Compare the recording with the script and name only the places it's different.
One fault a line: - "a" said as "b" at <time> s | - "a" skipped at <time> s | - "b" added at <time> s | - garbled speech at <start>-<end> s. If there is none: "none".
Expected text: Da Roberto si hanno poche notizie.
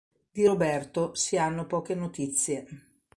- "Da" said as "Di" at 0.3 s